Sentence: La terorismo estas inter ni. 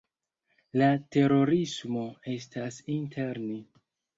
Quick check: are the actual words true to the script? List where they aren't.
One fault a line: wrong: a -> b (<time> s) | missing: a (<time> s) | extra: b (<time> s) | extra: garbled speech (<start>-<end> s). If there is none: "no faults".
no faults